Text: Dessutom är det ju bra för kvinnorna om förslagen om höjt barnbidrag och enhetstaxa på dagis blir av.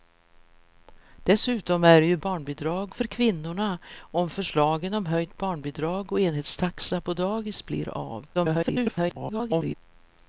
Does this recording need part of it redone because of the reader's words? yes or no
yes